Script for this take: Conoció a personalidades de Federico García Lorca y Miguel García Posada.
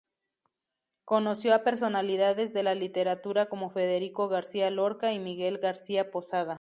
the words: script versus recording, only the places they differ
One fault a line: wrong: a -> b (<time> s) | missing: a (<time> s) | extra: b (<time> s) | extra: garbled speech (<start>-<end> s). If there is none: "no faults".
extra: la literatura como (2.6 s)